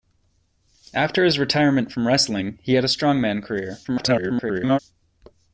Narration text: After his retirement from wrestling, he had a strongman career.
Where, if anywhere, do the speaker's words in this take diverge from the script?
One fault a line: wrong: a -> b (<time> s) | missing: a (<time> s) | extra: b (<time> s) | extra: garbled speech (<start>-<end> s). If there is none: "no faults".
extra: garbled speech (3.8-4.8 s)